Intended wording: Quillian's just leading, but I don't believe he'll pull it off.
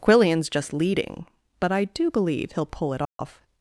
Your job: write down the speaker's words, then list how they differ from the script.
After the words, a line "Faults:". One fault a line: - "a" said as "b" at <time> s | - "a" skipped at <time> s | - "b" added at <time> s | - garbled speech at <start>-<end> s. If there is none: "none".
Quillian's just leading, but I do believe he'll pull it off.
Faults:
- "don't" said as "do" at 1.8 s